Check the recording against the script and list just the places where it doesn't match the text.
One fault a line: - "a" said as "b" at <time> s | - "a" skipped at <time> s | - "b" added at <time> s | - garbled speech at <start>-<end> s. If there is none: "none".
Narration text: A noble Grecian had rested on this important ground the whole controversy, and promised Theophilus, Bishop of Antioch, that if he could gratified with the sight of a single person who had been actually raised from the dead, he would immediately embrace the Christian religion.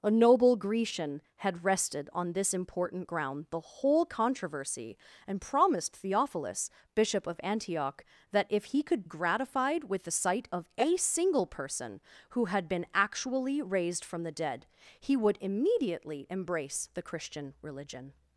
none